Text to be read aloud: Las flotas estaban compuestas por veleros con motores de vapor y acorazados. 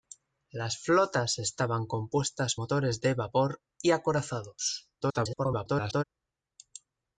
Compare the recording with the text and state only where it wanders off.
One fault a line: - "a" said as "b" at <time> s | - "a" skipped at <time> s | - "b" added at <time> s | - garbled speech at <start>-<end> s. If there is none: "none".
- "por veleros con" skipped at 2.5 s
- garbled speech at 5.0-6.0 s